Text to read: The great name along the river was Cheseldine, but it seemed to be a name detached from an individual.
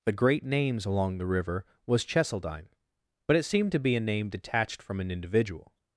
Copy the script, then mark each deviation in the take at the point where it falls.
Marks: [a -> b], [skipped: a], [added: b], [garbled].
The great [name -> names] along the river was Cheseldine, but it seemed to be a name detached from an individual.